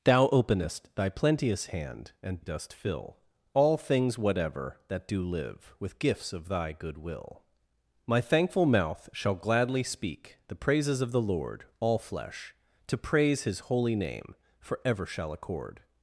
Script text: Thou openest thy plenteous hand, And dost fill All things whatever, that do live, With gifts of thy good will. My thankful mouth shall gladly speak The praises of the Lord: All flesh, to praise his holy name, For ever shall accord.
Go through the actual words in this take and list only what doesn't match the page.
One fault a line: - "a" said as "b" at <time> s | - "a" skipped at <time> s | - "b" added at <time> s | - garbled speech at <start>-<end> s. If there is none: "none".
none